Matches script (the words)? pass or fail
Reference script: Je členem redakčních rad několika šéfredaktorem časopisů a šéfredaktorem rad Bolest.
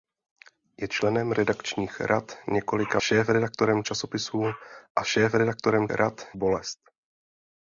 pass